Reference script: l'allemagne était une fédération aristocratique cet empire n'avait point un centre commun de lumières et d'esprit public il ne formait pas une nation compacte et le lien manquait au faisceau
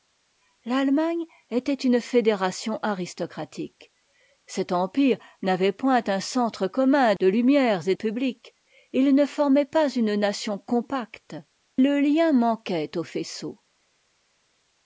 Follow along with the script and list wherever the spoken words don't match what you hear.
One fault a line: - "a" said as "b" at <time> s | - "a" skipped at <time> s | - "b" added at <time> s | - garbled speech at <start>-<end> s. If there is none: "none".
- "d'esprit" skipped at 7.9 s
- "et" skipped at 11.4 s